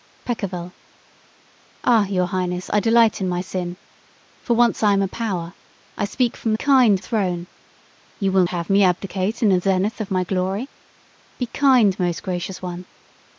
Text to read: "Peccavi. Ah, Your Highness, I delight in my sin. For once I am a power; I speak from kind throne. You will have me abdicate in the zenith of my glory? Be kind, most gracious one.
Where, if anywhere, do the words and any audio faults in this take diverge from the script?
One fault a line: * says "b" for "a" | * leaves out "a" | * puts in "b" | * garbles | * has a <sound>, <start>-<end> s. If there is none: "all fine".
all fine